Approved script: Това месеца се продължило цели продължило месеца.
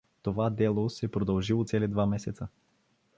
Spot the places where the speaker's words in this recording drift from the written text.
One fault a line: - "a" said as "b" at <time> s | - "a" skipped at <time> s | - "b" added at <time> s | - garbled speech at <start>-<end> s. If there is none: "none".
- "месеца" said as "дело" at 0.5 s
- "продължило" said as "два" at 1.9 s